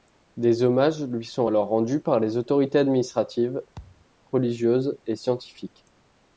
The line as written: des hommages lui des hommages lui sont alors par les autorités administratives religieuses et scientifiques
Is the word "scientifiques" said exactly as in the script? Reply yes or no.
yes